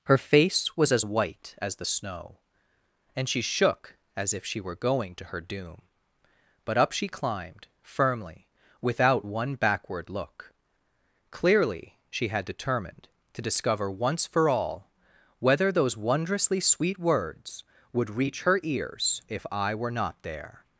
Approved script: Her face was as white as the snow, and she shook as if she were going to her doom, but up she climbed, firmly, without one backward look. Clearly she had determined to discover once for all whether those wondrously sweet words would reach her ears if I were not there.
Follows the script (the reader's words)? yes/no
yes